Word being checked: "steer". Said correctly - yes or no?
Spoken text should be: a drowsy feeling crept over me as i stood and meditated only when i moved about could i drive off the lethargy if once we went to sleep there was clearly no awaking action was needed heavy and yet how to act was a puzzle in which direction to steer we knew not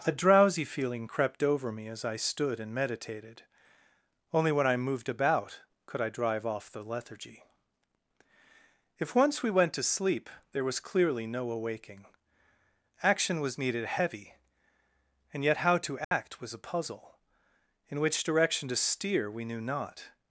yes